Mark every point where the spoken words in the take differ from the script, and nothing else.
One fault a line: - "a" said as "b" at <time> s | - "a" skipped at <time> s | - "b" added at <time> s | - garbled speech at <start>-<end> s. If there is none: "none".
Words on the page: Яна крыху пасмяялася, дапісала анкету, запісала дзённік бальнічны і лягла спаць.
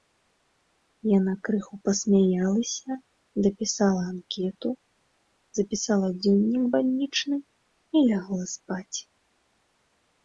none